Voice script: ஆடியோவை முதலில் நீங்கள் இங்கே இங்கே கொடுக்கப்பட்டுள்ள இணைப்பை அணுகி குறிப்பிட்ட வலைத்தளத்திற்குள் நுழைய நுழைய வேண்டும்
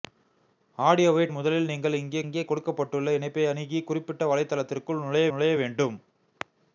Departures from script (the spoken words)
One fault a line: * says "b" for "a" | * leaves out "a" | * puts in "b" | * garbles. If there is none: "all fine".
all fine